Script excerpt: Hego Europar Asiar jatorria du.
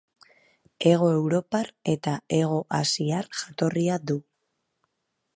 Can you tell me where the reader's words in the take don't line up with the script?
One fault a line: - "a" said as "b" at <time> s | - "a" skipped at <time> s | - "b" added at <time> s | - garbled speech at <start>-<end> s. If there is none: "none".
- "eta Hego" added at 1.9 s